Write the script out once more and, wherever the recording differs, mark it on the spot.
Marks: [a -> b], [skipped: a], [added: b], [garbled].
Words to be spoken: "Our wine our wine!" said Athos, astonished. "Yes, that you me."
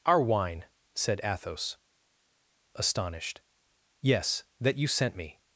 "Our wine [skipped: our wine!"] said Athos, astonished. "Yes, that you [added: sent] me."